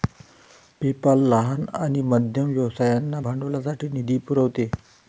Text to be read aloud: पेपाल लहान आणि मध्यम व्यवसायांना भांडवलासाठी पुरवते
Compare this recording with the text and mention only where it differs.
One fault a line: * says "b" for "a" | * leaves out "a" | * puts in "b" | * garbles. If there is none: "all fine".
* puts in "निधी"